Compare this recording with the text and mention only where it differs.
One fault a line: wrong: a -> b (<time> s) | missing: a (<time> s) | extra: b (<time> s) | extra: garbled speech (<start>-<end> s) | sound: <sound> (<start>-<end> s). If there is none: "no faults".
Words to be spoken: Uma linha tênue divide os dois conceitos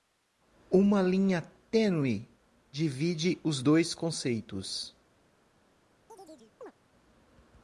sound: chirp (6.1-6.7 s)